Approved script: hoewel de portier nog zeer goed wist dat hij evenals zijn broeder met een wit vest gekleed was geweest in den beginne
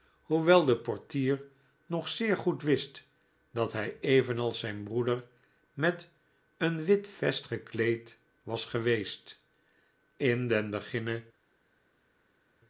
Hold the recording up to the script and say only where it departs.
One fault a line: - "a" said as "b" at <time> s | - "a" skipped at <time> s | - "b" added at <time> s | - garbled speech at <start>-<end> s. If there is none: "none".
none